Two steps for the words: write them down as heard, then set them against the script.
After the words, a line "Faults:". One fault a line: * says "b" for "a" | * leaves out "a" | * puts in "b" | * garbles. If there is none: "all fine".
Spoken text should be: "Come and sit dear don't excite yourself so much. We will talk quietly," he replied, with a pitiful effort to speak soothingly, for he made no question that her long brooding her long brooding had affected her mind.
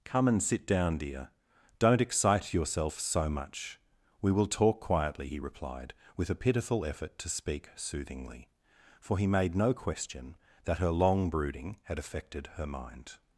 "Come and sit down, dear don't excite yourself so much. We will talk quietly," he replied, with a pitiful effort to speak soothingly, for he made no question that her long brooding had affected her mind.
Faults:
* puts in "down"
* leaves out "her long brooding"